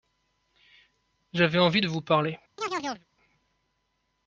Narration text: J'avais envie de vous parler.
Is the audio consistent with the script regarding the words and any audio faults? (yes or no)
no